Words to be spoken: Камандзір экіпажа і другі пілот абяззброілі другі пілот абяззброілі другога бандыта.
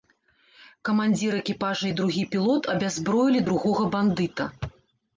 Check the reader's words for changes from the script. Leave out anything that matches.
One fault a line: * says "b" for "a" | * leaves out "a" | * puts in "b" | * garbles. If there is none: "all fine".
* leaves out "другі пілот абяззброілі"